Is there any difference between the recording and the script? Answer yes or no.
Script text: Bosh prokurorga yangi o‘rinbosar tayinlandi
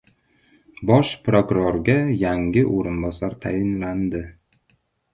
no